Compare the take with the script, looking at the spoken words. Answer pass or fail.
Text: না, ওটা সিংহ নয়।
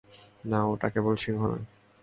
fail